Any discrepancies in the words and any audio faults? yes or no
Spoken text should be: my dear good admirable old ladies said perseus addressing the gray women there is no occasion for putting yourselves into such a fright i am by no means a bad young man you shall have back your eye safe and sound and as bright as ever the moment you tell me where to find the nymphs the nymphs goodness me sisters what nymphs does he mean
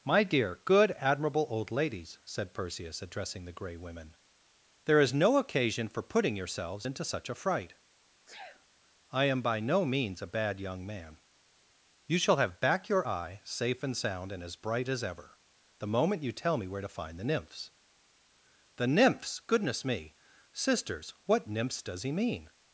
yes